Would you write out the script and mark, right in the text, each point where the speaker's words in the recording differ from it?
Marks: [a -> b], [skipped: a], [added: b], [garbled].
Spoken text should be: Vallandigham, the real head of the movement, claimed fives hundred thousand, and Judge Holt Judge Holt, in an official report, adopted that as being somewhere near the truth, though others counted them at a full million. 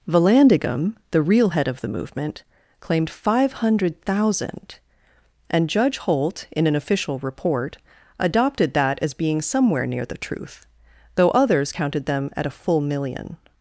Vallandigham, the real head of the movement, claimed [fives -> five] hundred thousand, and Judge Holt [skipped: Judge Holt,] in an official report, adopted that as being somewhere near the truth, though others counted them at a full million.